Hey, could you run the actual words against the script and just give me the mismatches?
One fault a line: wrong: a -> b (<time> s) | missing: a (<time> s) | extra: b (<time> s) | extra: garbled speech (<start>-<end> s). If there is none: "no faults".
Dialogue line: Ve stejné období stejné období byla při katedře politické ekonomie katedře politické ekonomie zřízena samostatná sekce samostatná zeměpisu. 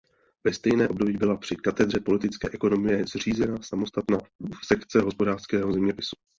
missing: stejné období (1.2 s)
missing: katedře politické ekonomie (3.1 s)
wrong: samostatná -> hospodářského (5.0 s)